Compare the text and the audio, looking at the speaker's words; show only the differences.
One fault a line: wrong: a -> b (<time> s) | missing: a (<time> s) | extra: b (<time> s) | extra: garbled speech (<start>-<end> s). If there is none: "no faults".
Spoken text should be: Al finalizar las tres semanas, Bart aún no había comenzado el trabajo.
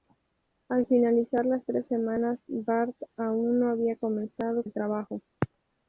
no faults